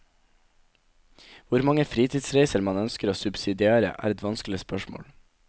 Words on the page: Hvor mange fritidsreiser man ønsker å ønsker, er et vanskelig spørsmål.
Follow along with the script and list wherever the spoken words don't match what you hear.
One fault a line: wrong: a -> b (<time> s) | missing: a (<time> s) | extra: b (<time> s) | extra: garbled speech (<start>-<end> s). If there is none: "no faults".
wrong: ønsker -> subsidiere (3.2 s)